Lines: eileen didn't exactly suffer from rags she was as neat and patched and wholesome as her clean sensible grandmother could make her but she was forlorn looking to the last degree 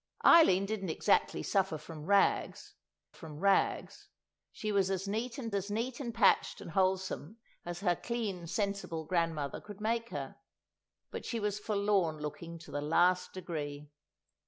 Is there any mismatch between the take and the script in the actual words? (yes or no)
yes